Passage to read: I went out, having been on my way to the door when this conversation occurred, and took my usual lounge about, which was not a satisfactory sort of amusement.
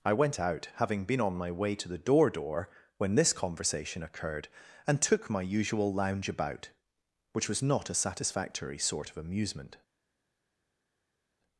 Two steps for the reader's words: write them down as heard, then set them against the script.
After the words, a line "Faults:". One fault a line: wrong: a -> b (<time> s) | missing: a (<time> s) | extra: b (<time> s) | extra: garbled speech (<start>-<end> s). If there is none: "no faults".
I went out, having been on my way to the door door when this conversation occurred, and took my usual lounge about, which was not a satisfactory sort of amusement.
Faults:
extra: door (2.3 s)